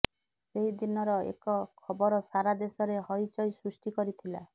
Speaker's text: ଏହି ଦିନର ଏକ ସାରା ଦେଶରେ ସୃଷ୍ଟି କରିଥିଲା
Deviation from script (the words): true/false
true